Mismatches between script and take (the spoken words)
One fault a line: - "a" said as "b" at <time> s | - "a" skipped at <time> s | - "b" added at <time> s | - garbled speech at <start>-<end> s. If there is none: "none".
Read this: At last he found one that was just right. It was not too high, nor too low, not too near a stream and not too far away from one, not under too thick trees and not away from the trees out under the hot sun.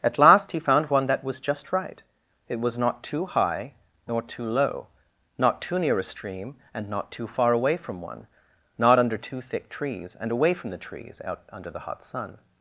- "not" skipped at 10.3 s